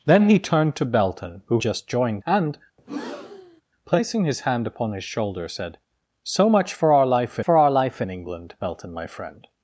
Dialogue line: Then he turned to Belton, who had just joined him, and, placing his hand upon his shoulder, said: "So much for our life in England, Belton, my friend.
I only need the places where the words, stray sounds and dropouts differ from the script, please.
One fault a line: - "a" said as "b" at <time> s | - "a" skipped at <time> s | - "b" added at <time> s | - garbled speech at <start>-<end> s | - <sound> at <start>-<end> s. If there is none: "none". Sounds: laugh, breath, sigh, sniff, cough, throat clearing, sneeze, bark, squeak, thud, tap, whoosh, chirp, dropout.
- "had" skipped at 1.6 s
- "him" skipped at 2.2 s
- breath at 2.8-3.6 s
- "for our life" added at 7.4 s